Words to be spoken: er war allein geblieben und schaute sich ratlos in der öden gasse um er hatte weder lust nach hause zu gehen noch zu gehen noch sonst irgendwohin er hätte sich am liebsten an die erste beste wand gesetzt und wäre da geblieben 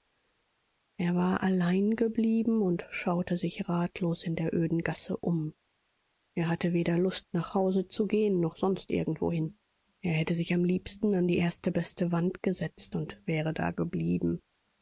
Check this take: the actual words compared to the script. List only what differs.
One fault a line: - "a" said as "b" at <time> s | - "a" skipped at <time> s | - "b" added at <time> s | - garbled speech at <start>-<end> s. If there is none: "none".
- "zu gehen noch" skipped at 8.6 s